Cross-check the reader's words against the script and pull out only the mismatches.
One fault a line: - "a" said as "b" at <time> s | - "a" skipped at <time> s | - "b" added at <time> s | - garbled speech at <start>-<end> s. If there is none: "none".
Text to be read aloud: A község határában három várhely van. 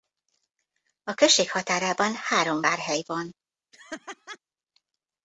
none